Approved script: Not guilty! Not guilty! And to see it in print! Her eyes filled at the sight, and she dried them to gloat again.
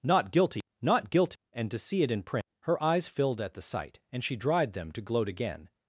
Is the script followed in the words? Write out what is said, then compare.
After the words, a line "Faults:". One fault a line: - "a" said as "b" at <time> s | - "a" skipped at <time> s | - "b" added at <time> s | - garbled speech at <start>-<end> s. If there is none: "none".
Not guilty! Not guilty! And to see it in print! Her eyes filled at the sight, and she dried them to gloat again.
Faults:
none